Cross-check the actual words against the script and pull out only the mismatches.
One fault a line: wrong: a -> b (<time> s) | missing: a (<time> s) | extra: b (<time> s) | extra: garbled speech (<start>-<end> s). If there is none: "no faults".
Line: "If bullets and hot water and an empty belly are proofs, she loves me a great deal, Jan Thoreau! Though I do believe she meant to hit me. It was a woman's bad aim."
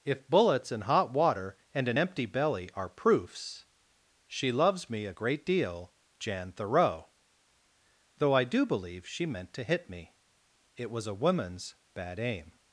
no faults